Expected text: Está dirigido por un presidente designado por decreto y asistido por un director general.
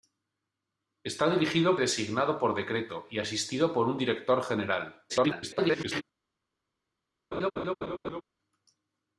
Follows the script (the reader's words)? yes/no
no